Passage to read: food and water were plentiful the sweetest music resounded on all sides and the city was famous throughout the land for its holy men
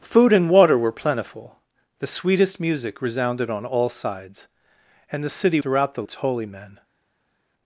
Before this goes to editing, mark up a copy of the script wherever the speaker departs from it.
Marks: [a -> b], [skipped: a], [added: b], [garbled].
food and water were plentiful the sweetest music resounded on all sides and the city [skipped: was famous] throughout the [skipped: land for] its holy men